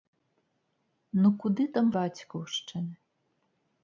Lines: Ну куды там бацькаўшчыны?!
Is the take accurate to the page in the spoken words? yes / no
yes